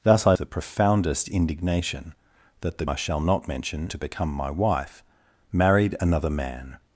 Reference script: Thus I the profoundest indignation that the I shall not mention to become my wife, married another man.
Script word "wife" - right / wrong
right